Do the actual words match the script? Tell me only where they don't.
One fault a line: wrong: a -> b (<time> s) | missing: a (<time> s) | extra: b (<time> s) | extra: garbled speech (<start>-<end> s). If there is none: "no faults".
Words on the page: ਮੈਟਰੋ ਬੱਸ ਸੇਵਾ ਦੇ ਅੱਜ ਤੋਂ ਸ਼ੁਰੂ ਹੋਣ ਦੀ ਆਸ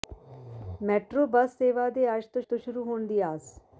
extra: ਤੋਂ (2.4 s)